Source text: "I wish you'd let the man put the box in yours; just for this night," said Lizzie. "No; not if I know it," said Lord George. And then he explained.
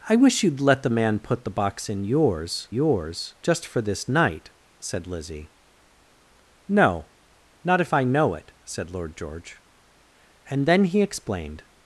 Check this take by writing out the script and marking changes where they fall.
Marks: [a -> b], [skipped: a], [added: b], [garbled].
"I wish you'd let the man put the box in yours; [added: yours] just for this night," said Lizzie. "No; not if I know it," said Lord George. And then he explained.